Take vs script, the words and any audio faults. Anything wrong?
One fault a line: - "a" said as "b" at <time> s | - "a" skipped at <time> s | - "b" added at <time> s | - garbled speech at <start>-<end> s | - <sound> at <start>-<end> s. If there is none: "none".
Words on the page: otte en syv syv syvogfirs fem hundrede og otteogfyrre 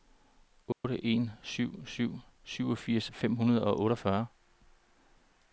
- dropout at 0.7-0.8 s